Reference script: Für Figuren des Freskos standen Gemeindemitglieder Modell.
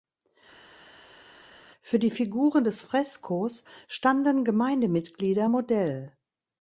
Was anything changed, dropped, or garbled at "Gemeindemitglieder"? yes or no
no